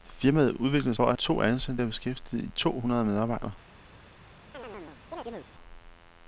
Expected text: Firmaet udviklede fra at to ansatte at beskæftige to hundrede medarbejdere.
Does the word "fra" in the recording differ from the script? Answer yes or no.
no